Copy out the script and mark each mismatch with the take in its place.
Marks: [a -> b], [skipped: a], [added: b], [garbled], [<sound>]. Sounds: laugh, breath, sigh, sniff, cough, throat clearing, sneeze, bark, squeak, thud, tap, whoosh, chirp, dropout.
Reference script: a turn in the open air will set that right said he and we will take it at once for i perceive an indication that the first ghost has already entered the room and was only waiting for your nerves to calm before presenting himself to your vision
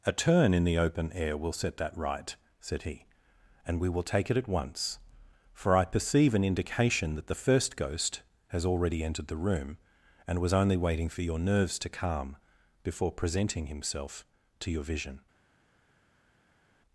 a turn in the open air will set that right said he and we will take it at once for i perceive an indication that the first ghost has already entered the room and was only waiting for your nerves to calm before presenting himself to your vision